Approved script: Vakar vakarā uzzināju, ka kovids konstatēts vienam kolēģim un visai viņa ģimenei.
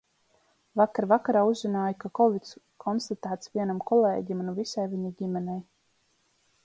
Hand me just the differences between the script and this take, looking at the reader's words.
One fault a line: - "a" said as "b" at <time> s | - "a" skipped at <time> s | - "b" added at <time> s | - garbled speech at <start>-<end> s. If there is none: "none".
none